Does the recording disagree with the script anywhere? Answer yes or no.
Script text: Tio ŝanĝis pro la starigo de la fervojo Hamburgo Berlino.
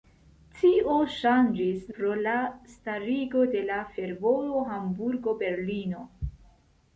no